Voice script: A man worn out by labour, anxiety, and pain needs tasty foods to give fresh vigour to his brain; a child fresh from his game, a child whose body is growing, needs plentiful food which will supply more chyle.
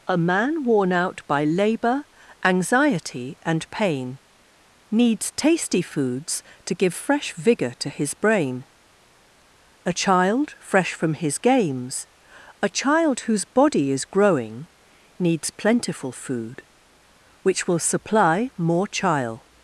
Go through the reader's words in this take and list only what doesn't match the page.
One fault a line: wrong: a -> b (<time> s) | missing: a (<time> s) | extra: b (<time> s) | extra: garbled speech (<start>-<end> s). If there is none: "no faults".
wrong: game -> games (11.4 s)